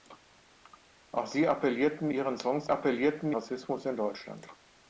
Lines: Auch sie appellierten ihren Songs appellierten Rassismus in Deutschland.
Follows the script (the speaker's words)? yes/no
yes